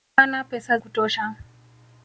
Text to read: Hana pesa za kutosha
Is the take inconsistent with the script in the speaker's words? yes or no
yes